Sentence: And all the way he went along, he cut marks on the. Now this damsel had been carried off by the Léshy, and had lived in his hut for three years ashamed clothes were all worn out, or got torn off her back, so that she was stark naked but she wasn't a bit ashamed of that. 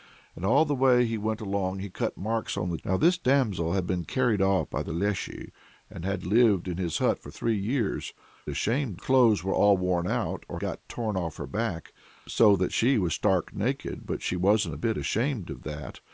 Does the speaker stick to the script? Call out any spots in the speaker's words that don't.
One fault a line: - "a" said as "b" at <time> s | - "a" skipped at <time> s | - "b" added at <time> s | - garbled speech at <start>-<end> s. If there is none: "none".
none